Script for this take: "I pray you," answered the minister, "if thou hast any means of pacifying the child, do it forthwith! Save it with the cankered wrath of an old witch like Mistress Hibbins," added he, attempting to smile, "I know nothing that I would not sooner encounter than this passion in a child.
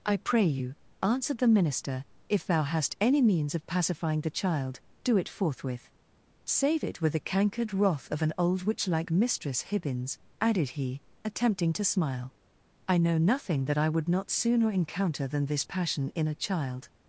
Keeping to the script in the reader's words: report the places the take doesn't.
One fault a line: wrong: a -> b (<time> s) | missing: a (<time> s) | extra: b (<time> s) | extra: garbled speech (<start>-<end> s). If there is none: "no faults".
no faults